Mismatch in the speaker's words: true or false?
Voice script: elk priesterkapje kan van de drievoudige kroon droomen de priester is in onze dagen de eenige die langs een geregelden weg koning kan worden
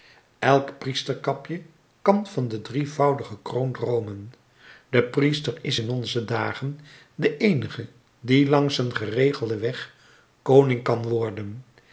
false